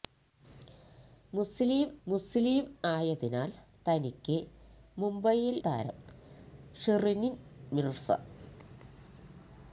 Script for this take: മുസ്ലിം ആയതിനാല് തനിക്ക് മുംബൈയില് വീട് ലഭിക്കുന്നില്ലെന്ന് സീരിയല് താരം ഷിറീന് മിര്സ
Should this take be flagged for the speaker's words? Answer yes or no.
yes